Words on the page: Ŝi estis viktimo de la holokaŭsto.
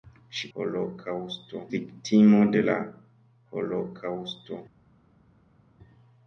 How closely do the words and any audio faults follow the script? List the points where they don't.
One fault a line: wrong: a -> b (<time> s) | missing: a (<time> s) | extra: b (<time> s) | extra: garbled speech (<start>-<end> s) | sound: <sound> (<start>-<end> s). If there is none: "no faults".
wrong: estis -> holokaŭsto (0.6 s)